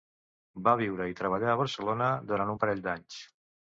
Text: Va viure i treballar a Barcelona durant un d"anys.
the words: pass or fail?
fail